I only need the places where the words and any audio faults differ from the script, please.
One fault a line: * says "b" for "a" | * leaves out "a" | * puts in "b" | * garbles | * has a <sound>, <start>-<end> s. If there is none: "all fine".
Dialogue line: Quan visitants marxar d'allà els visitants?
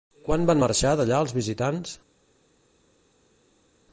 * says "van" for "visitants"